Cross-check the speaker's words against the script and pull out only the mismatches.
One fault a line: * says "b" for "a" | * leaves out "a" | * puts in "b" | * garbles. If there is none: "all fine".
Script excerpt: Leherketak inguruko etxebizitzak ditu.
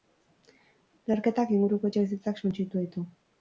* puts in "suntsitu"